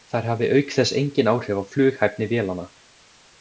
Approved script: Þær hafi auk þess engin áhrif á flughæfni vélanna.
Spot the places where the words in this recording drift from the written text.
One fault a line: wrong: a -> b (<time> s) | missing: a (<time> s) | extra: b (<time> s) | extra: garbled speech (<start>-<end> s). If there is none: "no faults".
no faults